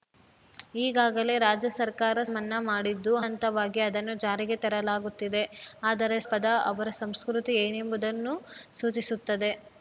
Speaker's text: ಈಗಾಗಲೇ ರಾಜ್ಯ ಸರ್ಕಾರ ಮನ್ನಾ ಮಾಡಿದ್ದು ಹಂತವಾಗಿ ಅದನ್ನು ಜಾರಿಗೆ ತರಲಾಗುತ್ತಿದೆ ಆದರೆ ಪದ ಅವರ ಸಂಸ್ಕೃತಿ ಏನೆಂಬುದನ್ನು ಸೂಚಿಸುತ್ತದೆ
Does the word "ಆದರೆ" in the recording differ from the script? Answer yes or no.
no